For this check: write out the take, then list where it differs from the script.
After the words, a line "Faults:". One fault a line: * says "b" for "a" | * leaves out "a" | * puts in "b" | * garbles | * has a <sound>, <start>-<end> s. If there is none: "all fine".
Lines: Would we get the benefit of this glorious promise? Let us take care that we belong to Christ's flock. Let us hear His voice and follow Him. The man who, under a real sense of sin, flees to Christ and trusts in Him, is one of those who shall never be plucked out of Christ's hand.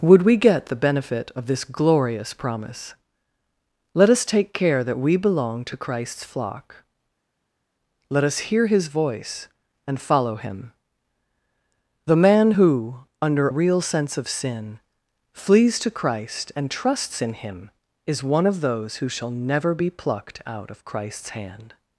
Would we get the benefit of this glorious promise? Let us take care that we belong to Christ's flock. Let us hear His voice and follow Him. The man who, under real sense of sin, flees to Christ and trusts in Him, is one of those who shall never be plucked out of Christ's hand.
Faults:
* leaves out "a"